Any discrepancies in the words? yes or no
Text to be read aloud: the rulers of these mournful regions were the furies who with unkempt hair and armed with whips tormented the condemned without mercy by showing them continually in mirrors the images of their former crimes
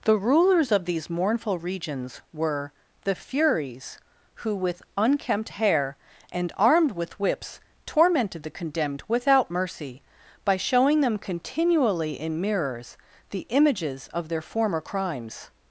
no